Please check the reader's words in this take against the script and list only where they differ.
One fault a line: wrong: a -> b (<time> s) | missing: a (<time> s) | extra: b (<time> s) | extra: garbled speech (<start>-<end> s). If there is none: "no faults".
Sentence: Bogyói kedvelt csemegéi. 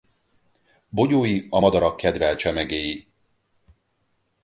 extra: a madarak (1.5 s)